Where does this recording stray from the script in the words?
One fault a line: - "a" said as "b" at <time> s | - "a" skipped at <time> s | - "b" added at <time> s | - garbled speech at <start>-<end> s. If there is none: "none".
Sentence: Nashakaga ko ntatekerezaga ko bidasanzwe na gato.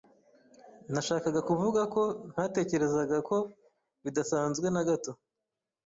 - "kuvuga" added at 1.5 s